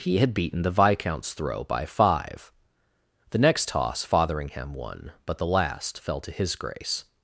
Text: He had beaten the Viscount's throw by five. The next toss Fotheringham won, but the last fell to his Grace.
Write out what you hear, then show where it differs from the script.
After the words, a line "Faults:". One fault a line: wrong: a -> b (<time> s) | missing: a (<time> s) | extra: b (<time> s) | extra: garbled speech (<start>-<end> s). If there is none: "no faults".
He had beaten the Viscount's throw by five. The next toss Fotheringham won, but the last fell to his Grace.
Faults:
no faults